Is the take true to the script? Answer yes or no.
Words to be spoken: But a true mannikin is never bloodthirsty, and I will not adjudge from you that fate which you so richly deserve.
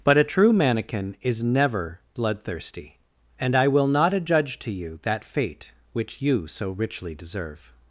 no